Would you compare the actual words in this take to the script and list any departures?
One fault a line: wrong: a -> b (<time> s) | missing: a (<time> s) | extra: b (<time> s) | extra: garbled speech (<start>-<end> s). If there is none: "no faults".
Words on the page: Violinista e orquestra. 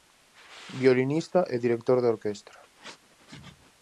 extra: director de (1.6 s)